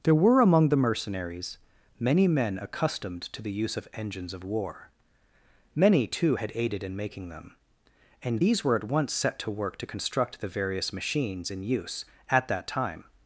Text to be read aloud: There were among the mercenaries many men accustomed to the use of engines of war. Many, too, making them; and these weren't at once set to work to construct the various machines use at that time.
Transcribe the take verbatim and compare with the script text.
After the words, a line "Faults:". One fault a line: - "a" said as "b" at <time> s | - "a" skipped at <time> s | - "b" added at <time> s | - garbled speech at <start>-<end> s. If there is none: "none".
There were among the mercenaries many men accustomed to the use of engines of war. Many, too, had aided in making them; and these were at once set to work to construct the various machines in use at that time.
Faults:
- "had aided in" added at 6.4 s
- "weren't" said as "were" at 8.6 s
- "in" added at 11.5 s